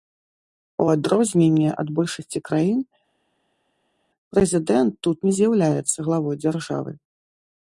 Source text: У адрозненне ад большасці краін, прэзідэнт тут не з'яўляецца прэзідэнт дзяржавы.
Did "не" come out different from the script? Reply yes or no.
no